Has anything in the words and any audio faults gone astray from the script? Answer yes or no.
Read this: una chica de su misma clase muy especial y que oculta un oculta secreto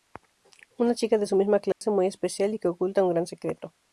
yes